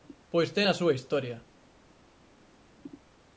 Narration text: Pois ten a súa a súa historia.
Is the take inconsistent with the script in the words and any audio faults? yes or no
yes